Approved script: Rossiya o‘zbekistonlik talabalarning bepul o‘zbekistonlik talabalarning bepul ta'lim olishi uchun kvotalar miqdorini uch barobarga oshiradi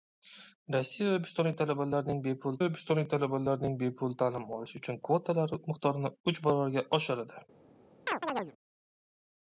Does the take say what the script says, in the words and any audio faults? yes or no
no